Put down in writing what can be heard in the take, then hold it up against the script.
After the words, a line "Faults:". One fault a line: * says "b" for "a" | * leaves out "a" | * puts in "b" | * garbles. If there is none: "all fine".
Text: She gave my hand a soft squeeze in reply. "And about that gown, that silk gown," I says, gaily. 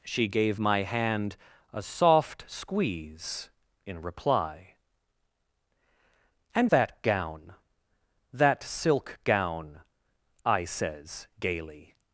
She gave my hand a soft squeeze in reply. "And that gown, that silk gown," I says, gaily.
Faults:
* leaves out "about"